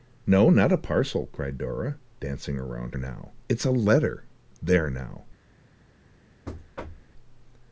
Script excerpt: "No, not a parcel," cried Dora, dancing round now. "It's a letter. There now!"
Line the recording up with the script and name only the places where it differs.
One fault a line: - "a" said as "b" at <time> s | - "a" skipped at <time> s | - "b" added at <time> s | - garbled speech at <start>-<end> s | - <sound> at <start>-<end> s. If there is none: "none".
- thud at 6.5-7.1 s